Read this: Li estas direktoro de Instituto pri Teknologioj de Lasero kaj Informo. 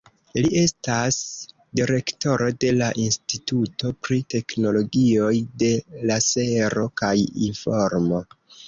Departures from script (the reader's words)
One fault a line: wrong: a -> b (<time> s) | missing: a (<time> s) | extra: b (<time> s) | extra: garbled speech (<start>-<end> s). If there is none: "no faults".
extra: la (2.8 s)